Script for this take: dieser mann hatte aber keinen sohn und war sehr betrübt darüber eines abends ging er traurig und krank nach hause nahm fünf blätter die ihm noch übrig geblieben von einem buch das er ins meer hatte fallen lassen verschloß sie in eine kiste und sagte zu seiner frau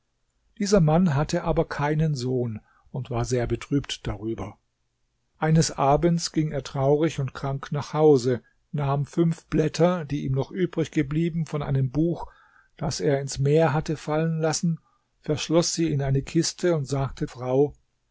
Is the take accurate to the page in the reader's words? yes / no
no